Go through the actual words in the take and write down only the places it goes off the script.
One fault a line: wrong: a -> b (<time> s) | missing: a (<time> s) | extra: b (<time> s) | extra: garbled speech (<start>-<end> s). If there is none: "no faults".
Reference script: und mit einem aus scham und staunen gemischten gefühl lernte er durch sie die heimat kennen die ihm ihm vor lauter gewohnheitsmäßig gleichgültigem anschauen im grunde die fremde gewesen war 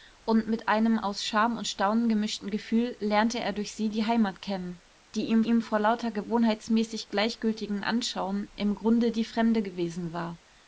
no faults